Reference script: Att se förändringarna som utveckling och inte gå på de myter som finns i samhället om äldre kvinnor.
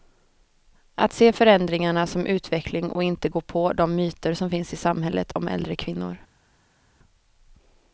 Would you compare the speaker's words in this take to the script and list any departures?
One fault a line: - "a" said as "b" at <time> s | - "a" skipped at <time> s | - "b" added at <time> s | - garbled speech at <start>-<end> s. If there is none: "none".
none